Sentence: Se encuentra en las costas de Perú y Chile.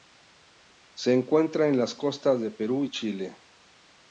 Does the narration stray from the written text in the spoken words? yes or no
no